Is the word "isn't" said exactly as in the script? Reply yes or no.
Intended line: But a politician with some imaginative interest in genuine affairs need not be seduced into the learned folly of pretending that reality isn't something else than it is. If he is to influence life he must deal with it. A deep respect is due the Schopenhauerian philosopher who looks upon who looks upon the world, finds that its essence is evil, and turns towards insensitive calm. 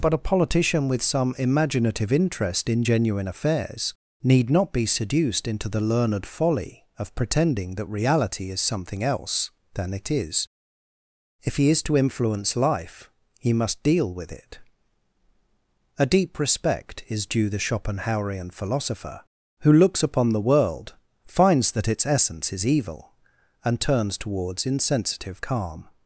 no